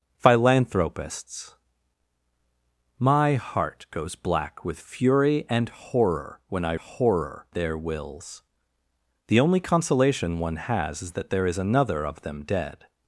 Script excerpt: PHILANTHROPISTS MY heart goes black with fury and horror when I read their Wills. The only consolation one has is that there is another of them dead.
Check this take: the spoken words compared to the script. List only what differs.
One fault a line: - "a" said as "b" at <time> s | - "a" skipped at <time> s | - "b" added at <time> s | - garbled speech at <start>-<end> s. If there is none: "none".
- "read" said as "horror" at 6.8 s